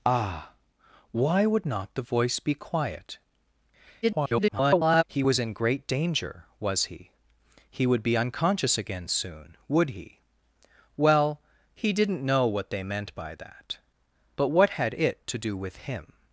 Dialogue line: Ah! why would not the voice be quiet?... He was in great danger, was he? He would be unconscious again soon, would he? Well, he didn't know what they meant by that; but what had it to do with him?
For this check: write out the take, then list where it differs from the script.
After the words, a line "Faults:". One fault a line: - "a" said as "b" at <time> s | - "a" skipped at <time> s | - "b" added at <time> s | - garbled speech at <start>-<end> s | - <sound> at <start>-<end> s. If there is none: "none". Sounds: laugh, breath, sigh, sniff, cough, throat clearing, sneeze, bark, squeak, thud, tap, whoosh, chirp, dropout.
Ah! why would not the voice be quiet?... [garbled] He was in great danger, was he? He would be unconscious again soon, would he? Well, he didn't know what they meant by that; but what had it to do with him?
Faults:
- garbled speech at 4.0-5.0 s